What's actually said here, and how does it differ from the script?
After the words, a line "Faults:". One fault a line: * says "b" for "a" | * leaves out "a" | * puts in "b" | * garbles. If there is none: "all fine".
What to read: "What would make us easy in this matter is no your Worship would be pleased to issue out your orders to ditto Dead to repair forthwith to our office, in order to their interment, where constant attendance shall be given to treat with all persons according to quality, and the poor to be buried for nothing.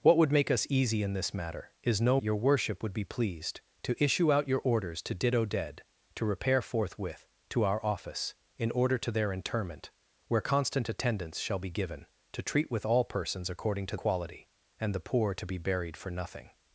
"What would make us easy in this matter is no your Worship would be pleased to issue out your orders to ditto Dead to repair forthwith to our office, in order to their interment, where constant attendance shall be given to treat with all persons according to quality, and the poor to be buried for nothing.
Faults:
all fine